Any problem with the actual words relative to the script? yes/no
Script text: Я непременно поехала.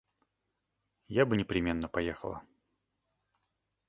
yes